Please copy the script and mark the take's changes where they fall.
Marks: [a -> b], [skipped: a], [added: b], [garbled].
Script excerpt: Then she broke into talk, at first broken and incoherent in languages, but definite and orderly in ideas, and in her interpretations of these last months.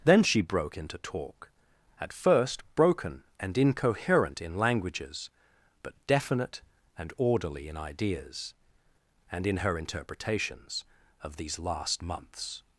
Then she broke into talk, at first broken and incoherent in languages, but definite and orderly in ideas, and in her interpretations of these last months.